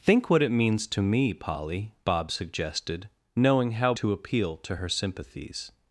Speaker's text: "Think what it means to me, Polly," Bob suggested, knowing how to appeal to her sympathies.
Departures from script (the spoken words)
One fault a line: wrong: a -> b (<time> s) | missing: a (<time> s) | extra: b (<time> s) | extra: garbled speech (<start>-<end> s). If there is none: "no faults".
no faults